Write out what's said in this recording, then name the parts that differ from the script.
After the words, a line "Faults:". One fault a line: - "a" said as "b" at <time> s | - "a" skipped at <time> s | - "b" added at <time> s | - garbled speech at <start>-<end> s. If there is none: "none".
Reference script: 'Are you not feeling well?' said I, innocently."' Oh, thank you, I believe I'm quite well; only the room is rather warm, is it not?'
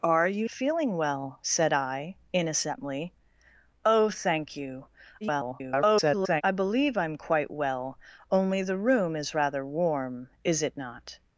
'Are you feeling well?' said I, innocently."' Oh, thank you, [garbled] I believe I'm quite well; only the room is rather warm, is it not?'
Faults:
- "not" skipped at 0.5 s
- garbled speech at 5.2-6.4 s